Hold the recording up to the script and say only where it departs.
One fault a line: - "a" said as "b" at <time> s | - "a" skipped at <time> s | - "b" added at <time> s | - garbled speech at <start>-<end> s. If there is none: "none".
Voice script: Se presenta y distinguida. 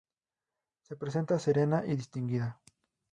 - "serena" added at 1.4 s